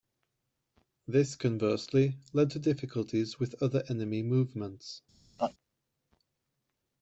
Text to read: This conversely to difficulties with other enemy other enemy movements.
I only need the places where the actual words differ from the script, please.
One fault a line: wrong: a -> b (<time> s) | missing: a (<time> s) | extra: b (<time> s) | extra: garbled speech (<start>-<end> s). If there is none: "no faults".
extra: led (2.3 s)
missing: other enemy (4.2 s)